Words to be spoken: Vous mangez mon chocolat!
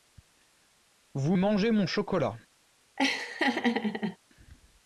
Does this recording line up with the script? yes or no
yes